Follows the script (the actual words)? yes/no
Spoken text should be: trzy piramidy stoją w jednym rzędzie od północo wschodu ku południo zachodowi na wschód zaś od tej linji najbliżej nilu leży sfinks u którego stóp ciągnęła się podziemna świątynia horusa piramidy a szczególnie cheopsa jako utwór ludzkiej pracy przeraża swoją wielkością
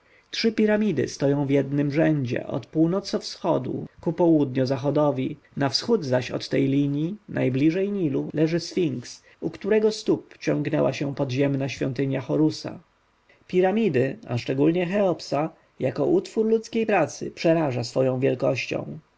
yes